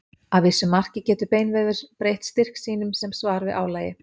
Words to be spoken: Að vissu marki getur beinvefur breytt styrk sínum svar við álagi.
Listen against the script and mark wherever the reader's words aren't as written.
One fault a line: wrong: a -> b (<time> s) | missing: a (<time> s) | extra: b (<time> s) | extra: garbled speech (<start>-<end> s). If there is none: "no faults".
extra: sem (3.0 s)